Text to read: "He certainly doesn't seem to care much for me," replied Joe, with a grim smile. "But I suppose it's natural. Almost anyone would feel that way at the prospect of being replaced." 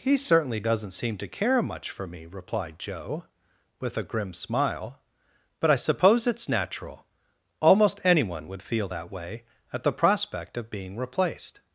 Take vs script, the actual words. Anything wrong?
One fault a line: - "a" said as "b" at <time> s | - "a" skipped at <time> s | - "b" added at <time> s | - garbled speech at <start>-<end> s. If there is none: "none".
none